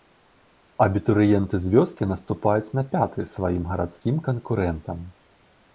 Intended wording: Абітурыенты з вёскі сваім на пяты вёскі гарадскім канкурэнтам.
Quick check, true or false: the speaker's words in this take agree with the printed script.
false